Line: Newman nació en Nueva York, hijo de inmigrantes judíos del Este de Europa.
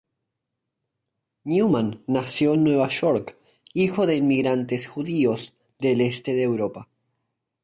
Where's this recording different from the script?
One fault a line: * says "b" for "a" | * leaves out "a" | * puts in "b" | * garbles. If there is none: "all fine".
all fine